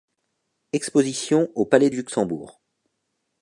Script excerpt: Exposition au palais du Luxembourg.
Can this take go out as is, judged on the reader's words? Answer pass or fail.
pass